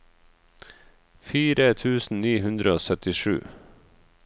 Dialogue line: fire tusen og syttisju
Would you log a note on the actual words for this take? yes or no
yes